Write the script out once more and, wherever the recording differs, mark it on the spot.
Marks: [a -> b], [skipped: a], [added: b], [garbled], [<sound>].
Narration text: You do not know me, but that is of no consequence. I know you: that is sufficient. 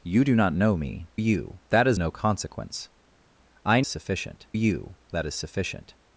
You do not know me, [but -> you] that is [skipped: of] no consequence. I [know -> sufficient] you: that is sufficient.